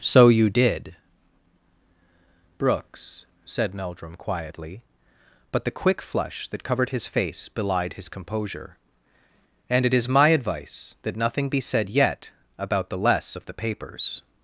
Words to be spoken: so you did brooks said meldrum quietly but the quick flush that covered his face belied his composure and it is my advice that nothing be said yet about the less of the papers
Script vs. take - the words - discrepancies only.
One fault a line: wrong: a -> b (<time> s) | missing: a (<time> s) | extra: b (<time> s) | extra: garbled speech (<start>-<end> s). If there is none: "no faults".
no faults